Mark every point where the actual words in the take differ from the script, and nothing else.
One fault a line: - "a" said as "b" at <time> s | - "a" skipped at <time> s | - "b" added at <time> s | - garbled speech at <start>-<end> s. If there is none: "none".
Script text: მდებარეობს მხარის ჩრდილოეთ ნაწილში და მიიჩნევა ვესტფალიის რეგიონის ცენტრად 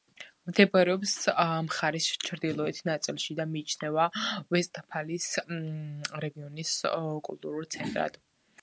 - "კულტურულ" added at 7.3 s